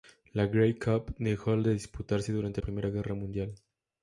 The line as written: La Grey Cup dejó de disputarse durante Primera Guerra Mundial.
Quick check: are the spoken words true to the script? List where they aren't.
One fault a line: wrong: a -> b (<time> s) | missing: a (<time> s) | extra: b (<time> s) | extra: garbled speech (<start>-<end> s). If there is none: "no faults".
no faults